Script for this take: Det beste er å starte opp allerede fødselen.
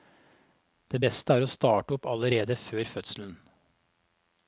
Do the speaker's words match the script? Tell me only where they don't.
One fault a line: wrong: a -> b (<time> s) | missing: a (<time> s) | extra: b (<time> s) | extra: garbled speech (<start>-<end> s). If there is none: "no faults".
extra: før (2.6 s)